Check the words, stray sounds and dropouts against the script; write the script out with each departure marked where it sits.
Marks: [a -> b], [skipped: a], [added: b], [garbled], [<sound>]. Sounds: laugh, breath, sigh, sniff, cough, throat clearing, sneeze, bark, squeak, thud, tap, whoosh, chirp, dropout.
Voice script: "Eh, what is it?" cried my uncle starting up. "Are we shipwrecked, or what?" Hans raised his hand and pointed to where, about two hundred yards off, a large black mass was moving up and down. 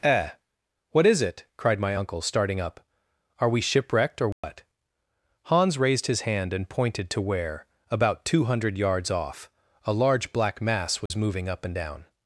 "Eh, what is it?" cried my uncle starting up. "Are we shipwrecked, or what?" [dropout] Hans raised his hand and pointed to where, about two hundred yards off, a large black mass was [dropout] moving up and down.